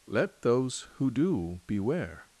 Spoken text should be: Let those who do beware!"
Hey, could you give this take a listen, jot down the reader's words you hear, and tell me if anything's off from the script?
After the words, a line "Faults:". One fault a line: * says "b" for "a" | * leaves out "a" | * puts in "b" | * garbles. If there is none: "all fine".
Let those who do beware!"
Faults:
all fine